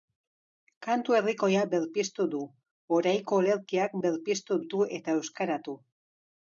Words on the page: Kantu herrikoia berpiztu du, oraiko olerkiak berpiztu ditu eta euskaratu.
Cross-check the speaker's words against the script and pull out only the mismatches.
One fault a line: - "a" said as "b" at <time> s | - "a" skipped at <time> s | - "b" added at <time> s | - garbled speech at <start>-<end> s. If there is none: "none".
none